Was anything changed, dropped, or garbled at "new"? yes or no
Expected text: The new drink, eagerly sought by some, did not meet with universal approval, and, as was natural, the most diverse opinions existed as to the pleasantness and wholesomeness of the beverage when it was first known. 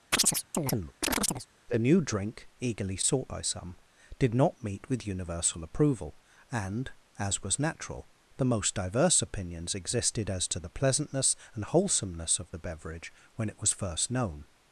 no